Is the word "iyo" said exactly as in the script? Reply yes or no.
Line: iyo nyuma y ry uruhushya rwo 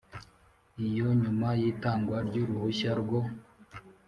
yes